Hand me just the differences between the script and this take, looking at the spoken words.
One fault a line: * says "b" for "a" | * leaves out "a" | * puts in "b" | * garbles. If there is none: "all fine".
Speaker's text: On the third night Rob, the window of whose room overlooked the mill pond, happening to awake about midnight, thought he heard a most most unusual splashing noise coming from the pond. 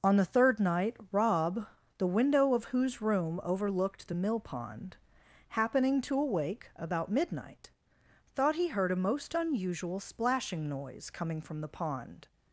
* leaves out "most"